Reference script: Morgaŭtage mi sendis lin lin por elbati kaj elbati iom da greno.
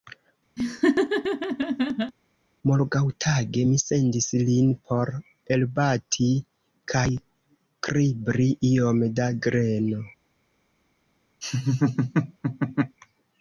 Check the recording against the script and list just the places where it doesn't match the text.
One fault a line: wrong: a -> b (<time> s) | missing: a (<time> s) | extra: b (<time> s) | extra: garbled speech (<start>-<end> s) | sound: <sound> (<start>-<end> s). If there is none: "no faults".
sound: laugh (0.6-2.1 s)
missing: lin (4.7 s)
wrong: elbati -> kribri (7.9 s)
sound: laugh (11.4-13.0 s)